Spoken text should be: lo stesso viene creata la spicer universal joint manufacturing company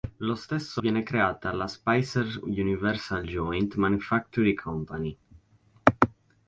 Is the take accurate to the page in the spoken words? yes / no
yes